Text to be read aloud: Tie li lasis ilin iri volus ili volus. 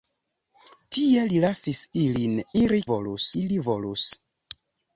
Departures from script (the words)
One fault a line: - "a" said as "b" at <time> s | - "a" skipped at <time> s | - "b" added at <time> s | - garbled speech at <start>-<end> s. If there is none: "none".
none